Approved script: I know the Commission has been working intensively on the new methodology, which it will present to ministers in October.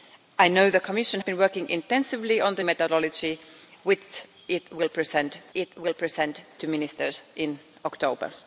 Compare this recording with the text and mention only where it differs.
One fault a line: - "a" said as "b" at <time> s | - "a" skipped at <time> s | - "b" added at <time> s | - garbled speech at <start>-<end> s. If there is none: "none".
- "has" skipped at 1.2 s
- "new" skipped at 2.6 s
- "it will present" added at 5.5 s